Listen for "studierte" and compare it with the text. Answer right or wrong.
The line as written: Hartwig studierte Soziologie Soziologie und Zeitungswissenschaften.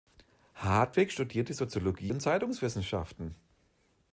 right